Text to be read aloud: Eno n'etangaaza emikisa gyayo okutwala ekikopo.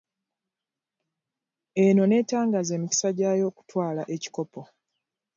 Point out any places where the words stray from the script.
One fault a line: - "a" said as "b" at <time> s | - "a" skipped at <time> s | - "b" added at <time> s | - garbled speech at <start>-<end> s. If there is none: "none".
none